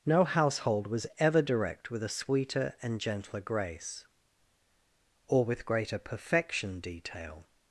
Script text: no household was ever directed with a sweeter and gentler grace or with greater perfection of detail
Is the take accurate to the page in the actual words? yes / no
no